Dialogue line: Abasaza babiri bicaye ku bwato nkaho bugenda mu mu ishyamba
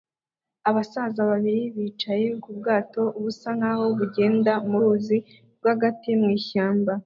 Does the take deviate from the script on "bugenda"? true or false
false